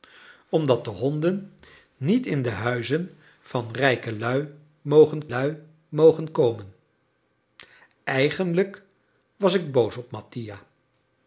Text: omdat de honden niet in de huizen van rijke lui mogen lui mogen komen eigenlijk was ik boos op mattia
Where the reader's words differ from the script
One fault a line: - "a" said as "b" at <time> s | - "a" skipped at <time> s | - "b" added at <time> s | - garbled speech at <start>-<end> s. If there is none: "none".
none